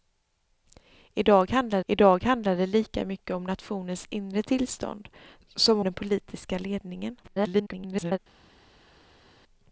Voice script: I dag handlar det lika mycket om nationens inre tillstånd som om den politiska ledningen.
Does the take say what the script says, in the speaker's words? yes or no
no